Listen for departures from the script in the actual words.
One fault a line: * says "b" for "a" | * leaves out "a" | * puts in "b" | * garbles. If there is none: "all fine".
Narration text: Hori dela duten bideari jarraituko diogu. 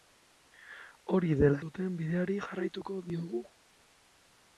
all fine